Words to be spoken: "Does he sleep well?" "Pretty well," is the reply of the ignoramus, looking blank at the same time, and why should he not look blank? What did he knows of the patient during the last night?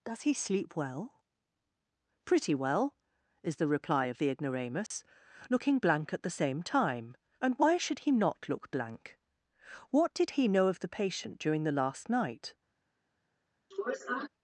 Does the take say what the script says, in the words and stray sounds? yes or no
no